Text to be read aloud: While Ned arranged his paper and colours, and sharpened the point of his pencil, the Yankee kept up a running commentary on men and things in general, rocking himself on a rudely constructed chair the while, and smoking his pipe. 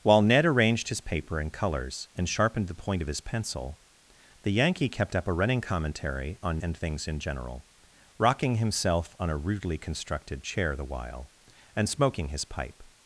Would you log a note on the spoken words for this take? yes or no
yes